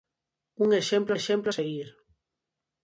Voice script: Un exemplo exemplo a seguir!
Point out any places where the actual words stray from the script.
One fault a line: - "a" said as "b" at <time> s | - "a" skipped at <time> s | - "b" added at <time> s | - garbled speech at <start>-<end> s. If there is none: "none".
none